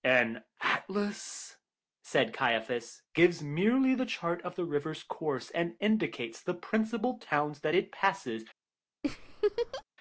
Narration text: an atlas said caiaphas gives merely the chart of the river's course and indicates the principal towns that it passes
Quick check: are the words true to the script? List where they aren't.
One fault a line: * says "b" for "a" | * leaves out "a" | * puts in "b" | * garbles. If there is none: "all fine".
all fine